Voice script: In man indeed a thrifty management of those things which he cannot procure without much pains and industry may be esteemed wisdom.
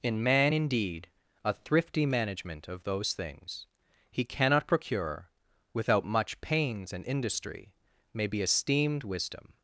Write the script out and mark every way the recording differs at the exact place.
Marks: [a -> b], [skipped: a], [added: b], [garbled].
In man indeed a thrifty management of those things [skipped: which] he cannot procure without much pains and industry may be esteemed wisdom.